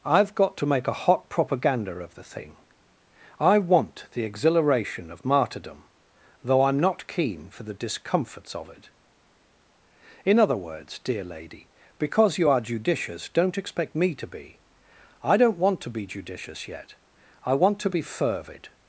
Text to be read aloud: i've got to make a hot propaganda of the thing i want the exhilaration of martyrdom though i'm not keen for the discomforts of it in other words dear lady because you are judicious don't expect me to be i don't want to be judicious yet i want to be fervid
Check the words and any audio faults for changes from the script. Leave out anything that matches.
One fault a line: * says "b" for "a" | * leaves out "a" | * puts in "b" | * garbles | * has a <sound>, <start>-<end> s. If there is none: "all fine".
all fine